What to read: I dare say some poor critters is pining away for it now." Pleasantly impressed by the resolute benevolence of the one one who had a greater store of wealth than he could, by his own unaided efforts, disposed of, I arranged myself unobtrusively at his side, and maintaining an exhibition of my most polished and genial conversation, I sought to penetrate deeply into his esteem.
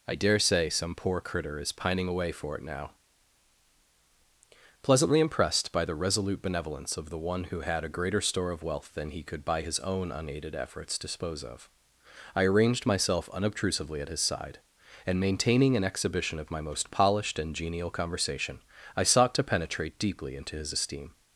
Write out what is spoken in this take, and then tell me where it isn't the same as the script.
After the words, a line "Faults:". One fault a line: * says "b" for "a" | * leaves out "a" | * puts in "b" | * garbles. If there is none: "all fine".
I dare say some poor critter is pining away for it now." Pleasantly impressed by the resolute benevolence of the one who had a greater store of wealth than he could, by his own unaided efforts, dispose of, I arranged myself unobtrusively at his side, and maintaining an exhibition of my most polished and genial conversation, I sought to penetrate deeply into his esteem.
Faults:
* says "critter" for "critters"
* leaves out "one"
* says "dispose" for "disposed"